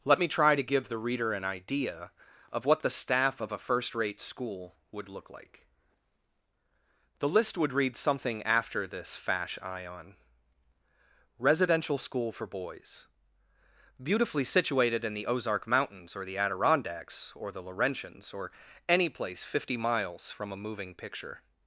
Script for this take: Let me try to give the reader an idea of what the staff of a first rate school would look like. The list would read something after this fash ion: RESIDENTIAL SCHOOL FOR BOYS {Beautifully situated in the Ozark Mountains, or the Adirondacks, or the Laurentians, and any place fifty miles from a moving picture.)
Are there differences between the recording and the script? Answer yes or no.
yes